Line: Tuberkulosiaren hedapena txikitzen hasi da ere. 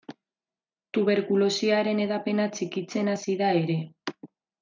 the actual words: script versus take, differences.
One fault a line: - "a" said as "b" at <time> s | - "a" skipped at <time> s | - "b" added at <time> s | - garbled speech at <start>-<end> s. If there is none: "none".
none